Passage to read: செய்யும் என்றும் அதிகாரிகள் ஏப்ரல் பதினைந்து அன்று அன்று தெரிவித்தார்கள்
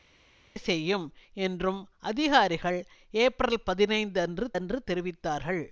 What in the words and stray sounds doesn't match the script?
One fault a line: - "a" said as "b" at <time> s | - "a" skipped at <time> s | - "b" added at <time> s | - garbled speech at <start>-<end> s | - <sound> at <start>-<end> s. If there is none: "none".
none